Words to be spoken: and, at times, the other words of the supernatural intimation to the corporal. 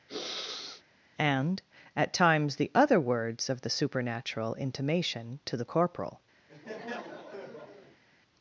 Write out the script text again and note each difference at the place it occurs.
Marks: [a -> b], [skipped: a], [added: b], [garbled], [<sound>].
[sniff] and, at times, the other words of the supernatural intimation to the corporal. [laugh]